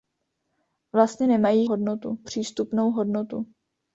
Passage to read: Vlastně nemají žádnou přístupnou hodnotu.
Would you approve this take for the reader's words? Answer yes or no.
no